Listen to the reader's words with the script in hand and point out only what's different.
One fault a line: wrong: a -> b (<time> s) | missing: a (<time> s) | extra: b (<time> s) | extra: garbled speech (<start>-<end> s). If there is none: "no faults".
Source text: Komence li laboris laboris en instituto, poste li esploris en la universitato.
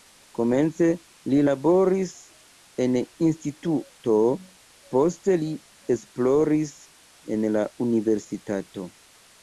missing: laboris (2.1 s)